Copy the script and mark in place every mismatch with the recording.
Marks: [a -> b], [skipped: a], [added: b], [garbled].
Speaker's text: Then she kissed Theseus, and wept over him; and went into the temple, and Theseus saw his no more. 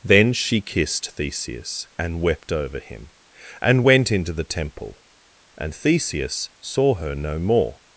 Then she kissed Theseus, and wept over him; and went into the temple, and Theseus saw [his -> her] no more.